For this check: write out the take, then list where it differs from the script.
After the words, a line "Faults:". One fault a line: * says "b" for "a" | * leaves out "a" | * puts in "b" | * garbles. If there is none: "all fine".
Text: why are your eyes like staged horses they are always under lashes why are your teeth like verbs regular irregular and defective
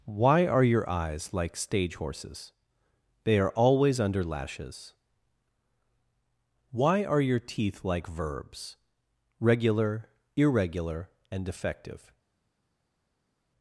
why are your eyes like stage horses they are always under lashes why are your teeth like verbs regular irregular and defective
Faults:
* says "stage" for "staged"